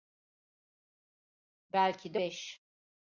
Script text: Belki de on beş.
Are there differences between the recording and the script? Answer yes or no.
yes